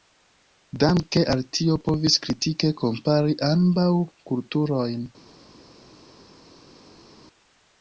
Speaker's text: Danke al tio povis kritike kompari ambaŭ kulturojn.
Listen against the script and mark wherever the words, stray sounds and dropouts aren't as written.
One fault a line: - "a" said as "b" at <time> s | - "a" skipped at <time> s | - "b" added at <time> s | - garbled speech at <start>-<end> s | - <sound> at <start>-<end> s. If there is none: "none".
none